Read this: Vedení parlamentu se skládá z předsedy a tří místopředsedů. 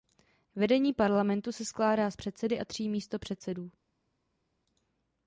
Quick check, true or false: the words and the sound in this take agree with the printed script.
true